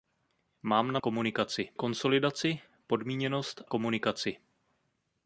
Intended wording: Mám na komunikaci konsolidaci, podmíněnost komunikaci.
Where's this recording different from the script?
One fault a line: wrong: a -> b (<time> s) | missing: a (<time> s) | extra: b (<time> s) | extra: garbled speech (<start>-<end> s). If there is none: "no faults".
no faults